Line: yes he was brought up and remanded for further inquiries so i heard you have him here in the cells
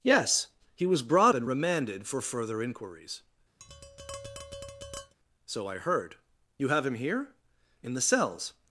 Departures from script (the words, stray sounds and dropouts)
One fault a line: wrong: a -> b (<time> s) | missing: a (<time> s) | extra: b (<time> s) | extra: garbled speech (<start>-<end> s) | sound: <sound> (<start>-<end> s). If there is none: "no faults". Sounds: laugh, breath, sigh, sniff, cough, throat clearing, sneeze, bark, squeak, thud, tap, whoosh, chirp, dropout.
missing: up (1.4 s)
sound: tap (3.6-5.1 s)